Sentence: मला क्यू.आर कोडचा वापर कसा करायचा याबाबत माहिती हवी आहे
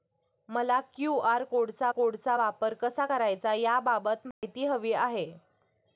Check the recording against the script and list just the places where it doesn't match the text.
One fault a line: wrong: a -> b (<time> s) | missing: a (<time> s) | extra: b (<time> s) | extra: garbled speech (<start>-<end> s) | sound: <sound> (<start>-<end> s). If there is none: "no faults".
extra: कोडचा (1.9 s)
sound: dropout (4.3-4.4 s)